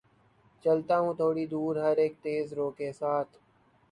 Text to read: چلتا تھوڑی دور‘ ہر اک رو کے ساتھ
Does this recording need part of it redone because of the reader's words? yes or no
yes